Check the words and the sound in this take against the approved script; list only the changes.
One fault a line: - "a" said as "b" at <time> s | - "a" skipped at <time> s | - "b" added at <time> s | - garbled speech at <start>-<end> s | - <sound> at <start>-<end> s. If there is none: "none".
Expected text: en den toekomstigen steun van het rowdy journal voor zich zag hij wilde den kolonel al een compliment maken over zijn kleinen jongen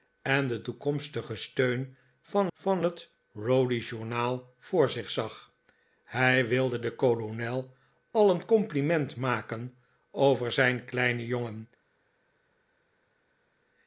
- "van" added at 2.5 s